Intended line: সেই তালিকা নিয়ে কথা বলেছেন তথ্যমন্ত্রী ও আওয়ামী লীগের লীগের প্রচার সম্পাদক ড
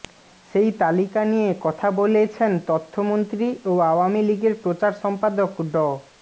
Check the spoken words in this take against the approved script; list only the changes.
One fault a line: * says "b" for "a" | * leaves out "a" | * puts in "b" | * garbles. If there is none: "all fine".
* leaves out "লীগের"